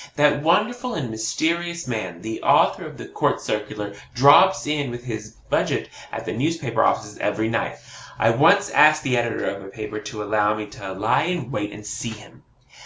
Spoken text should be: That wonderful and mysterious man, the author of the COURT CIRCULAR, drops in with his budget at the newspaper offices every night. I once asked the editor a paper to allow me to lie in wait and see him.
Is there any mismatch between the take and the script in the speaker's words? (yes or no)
yes